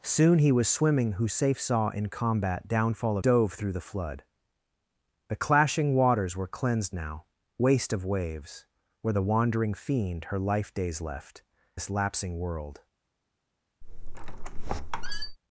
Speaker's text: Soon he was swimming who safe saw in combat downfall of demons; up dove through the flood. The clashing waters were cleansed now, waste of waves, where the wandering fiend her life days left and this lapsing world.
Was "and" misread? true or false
true